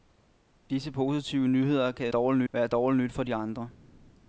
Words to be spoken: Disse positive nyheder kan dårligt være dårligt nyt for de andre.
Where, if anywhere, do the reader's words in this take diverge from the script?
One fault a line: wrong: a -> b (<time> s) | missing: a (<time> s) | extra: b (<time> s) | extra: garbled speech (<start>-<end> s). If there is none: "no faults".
no faults